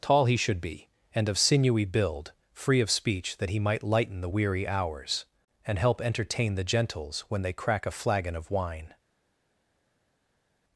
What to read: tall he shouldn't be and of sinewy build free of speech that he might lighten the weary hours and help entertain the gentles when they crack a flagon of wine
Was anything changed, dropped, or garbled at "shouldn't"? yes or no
yes